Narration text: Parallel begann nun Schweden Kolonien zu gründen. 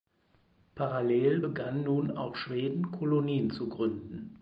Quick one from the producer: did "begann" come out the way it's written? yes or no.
yes